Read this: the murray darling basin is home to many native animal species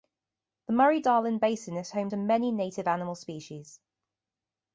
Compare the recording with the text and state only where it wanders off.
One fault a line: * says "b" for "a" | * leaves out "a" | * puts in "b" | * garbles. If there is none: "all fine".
all fine